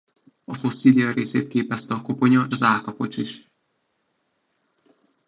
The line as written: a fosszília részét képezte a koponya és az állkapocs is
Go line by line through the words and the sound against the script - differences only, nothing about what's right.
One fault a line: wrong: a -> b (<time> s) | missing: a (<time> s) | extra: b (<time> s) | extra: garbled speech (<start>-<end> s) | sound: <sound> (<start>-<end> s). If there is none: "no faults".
missing: és (2.5 s)